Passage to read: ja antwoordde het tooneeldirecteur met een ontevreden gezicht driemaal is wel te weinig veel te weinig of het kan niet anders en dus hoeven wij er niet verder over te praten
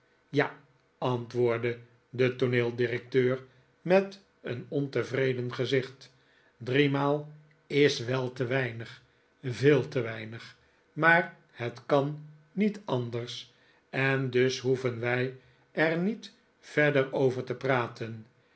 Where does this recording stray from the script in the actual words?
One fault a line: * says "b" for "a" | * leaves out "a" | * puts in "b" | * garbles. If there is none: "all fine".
* says "de" for "het"
* says "maar" for "of"